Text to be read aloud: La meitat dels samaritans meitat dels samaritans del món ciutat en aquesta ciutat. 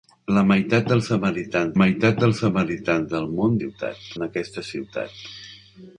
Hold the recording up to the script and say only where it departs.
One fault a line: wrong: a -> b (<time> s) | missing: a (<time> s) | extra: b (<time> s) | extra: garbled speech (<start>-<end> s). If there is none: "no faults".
no faults